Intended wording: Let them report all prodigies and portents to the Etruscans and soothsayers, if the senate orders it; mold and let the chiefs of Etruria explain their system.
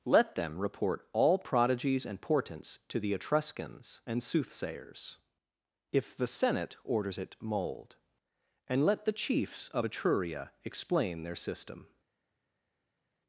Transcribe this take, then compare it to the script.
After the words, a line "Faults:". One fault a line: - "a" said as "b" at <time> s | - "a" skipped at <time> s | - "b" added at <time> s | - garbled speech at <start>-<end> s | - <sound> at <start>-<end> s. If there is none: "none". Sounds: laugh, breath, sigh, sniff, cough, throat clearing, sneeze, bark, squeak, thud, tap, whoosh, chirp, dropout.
Let them report all prodigies and portents to the Etruscans and soothsayers, if the senate orders it; mold and let the chiefs of Etruria explain their system.
Faults:
none